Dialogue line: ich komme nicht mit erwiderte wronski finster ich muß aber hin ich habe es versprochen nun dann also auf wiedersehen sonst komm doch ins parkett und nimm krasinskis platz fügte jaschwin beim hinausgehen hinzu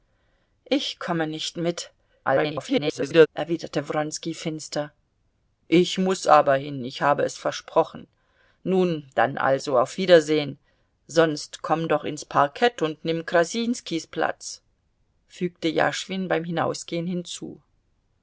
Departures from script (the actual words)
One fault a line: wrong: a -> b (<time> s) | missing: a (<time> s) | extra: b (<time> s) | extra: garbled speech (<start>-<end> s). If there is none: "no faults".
extra: garbled speech (2.2-3.3 s)